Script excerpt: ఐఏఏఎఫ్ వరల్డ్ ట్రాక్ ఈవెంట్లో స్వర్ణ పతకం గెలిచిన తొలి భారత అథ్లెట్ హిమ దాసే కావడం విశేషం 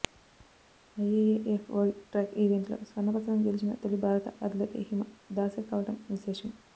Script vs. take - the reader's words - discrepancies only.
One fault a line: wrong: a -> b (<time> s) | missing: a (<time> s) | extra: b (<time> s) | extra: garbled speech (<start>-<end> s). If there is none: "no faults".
no faults